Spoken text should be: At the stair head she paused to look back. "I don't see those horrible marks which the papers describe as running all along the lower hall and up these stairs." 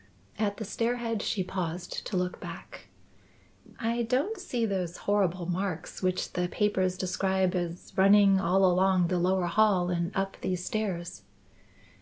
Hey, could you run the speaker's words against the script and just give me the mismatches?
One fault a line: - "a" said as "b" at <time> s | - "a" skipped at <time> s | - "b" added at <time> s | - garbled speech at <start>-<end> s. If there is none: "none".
none